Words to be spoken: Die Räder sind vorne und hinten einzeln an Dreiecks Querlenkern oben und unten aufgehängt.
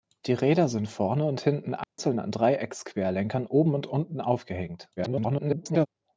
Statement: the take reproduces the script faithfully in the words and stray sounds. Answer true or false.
false